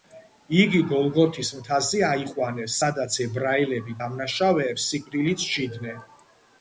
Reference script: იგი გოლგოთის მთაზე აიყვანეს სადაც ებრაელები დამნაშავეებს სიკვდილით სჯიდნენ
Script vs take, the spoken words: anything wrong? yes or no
no